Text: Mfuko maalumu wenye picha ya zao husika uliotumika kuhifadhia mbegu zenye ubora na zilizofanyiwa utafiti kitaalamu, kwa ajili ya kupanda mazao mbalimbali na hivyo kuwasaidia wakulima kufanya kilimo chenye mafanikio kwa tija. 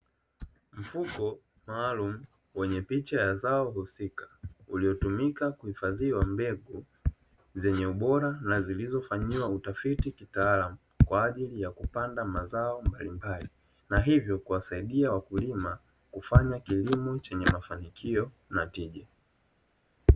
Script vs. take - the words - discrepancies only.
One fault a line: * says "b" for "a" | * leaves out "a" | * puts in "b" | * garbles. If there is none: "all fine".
* says "na" for "kwa"